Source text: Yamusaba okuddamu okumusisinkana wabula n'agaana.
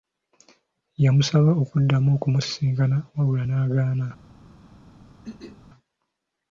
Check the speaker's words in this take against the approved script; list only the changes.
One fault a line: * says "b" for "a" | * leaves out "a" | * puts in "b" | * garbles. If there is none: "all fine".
all fine